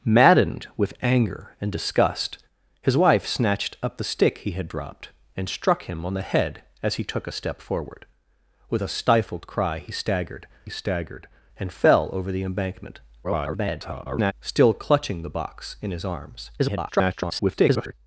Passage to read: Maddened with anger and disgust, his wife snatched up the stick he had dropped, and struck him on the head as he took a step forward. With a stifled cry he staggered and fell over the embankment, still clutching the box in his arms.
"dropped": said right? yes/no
yes